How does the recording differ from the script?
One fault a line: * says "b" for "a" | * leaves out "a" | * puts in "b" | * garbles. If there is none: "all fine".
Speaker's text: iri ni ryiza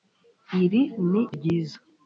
all fine